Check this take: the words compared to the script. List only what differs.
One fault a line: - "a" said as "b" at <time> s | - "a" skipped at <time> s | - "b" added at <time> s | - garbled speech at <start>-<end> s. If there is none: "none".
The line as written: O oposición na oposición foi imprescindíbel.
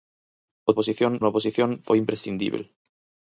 none